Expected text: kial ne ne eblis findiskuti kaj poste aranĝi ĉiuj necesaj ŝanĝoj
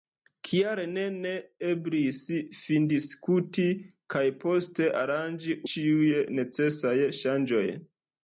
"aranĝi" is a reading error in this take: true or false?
false